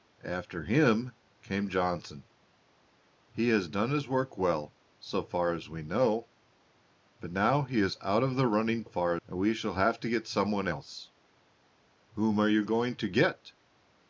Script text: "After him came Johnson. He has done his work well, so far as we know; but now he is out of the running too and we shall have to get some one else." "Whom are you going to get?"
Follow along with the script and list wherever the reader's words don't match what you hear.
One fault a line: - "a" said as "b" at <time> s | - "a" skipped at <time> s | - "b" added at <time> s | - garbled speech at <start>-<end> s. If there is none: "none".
- "too" said as "far" at 8.8 s